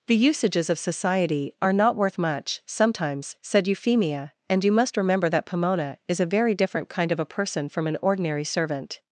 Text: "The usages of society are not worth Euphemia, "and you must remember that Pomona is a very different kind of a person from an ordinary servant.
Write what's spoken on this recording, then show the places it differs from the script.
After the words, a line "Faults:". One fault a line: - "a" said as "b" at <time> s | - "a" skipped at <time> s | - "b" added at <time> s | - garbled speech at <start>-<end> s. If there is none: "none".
"The usages of society are not worth much, sometimes," said Euphemia, "and you must remember that Pomona is a very different kind of a person from an ordinary servant.
Faults:
- "much sometimes said" added at 2.2 s